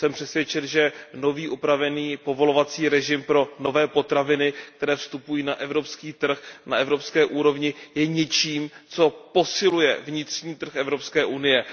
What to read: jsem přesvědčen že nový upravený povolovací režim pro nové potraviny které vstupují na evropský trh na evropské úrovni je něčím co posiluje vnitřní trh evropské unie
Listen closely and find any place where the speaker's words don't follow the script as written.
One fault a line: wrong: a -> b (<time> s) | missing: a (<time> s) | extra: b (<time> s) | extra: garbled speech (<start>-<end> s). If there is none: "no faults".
no faults